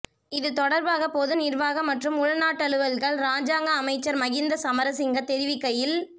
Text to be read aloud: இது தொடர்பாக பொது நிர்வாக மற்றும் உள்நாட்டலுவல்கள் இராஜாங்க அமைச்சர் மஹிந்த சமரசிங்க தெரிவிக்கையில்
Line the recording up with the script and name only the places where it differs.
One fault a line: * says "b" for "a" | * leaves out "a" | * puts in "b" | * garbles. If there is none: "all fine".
all fine